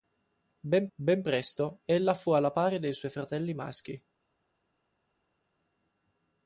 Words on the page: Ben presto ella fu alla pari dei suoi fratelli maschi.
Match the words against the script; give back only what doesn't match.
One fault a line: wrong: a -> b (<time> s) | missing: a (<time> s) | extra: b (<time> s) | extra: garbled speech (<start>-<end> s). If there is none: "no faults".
extra: ben (1.0 s)